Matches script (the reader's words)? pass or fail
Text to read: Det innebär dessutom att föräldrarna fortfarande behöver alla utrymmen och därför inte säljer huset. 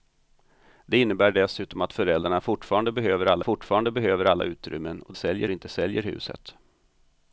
fail